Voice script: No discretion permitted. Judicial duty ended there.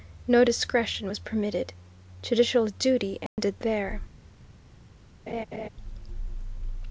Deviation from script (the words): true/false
true